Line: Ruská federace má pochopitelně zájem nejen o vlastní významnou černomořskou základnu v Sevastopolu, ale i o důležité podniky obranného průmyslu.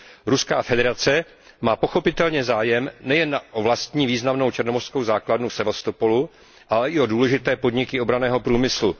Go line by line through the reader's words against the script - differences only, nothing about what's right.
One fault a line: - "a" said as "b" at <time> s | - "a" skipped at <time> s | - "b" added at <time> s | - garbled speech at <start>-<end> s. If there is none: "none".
none